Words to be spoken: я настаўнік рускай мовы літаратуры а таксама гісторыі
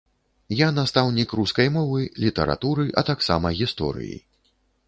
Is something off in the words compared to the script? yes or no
no